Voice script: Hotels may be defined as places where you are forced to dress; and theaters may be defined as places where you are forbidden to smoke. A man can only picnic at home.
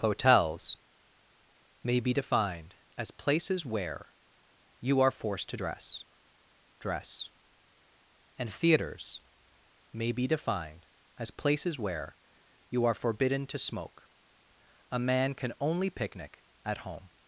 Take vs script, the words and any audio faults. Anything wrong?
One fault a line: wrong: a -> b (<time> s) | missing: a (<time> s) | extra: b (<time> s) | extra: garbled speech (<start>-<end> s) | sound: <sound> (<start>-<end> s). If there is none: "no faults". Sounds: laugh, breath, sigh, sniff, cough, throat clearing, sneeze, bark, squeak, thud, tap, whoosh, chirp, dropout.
extra: dress (6.8 s)